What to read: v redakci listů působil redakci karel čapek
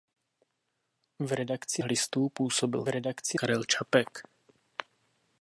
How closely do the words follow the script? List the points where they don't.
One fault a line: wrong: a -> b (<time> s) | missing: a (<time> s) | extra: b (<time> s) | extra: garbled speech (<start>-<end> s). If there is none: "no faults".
no faults